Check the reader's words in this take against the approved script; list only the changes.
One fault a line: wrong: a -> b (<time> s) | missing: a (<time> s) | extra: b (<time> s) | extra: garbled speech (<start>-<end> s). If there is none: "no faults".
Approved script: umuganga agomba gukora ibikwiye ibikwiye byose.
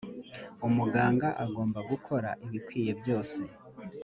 missing: ibikwiye (2.9 s)